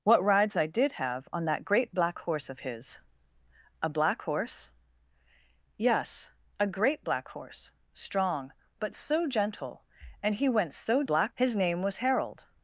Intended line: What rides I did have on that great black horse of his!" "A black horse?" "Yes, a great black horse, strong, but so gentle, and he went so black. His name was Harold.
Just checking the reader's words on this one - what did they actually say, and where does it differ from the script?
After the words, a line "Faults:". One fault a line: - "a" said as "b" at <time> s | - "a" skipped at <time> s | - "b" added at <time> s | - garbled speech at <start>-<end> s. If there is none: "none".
What rides I did have on that great black horse of his!" "A black horse?" "Yes, a great black horse, strong, but so gentle, and he went so black. His name was Harold.
Faults:
none